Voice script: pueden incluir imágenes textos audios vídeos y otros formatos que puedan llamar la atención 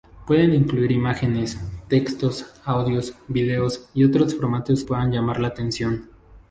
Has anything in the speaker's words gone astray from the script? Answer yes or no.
yes